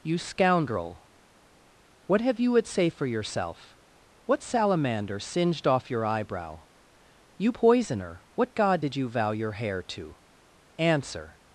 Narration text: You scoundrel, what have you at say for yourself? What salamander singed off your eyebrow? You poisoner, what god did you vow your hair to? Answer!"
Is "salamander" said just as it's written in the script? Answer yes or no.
yes